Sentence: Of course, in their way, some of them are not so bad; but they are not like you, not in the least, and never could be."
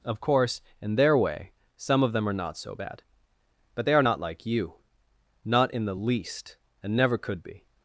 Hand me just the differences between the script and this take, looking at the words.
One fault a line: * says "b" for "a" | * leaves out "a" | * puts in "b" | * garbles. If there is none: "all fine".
all fine